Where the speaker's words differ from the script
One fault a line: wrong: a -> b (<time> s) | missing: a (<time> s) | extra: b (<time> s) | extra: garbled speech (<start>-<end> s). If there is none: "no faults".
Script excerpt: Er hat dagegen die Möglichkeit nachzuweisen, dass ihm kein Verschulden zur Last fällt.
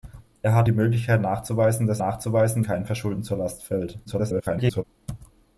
missing: dagegen (0.7 s)
wrong: ihm -> nachzuweisen (2.0 s)
extra: garbled speech (4.1-4.8 s)